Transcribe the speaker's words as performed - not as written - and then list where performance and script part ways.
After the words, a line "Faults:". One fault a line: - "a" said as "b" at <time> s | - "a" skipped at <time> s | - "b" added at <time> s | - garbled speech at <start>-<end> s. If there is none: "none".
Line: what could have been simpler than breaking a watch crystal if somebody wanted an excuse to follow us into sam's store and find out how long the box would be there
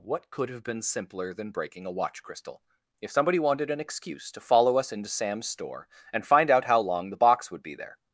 what could have been simpler than breaking a watch crystal if somebody wanted an excuse to follow us into sam's store and find out how long the box would be there
Faults:
none